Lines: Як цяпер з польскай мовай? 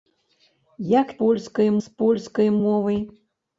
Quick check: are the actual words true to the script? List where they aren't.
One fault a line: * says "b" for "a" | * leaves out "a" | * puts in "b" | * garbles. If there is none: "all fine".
* says "польскай" for "цяпер"